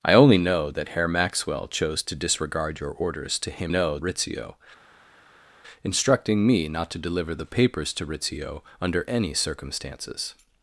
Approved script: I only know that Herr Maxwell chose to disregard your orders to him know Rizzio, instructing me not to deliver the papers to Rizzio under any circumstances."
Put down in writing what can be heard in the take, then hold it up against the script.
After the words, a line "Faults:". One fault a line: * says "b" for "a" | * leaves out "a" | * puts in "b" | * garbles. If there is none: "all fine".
I only know that Herr Maxwell chose to disregard your orders to him know Rizzio, instructing me not to deliver the papers to Rizzio under any circumstances."
Faults:
all fine